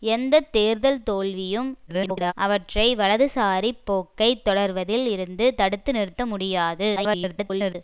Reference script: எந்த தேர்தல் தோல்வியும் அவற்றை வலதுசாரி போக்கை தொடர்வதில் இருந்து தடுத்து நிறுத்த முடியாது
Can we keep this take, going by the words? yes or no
no